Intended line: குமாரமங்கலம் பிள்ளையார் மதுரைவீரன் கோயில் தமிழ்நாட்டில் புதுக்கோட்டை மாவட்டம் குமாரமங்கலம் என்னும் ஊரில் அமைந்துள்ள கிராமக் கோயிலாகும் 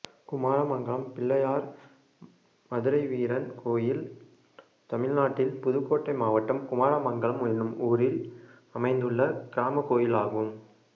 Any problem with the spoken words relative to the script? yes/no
no